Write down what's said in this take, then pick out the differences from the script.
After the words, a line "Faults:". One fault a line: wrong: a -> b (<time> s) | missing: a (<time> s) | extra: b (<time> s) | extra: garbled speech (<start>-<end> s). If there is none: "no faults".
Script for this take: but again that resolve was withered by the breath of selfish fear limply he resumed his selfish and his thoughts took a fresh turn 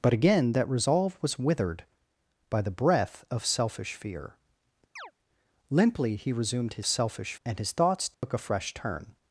but again that resolve was withered by the breath of selfish fear limply he resumed his selfish and his thoughts took a fresh turn
Faults:
no faults